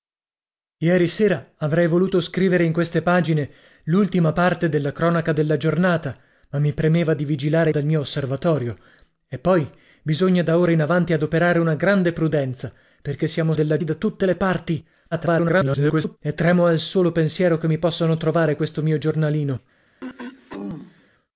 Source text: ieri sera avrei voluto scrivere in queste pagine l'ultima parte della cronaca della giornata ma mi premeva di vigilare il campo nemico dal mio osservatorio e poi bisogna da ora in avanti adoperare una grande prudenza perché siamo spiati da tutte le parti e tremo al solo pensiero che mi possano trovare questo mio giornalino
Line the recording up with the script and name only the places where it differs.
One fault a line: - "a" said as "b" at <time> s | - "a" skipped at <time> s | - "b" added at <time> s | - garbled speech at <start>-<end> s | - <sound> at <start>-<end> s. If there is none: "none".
- "il campo nemico" skipped at 7.7 s
- "spiati" said as "della" at 13.5 s
- garbled speech at 15.1-16.2 s
- throat clearing at 20.0-21.1 s